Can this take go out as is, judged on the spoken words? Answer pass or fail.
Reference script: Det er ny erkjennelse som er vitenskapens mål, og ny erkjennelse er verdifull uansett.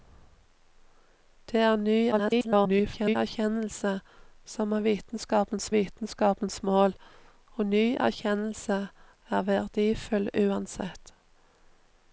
fail